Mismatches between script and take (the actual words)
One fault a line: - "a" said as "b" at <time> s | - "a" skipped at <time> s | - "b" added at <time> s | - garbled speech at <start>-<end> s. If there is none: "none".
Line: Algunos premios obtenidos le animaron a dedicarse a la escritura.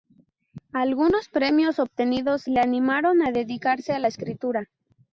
none